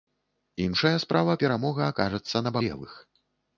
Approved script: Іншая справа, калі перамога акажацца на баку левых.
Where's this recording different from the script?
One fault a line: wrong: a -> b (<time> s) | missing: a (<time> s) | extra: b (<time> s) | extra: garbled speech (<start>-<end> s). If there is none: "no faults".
missing: калі (1.4 s)
missing: баку (2.6 s)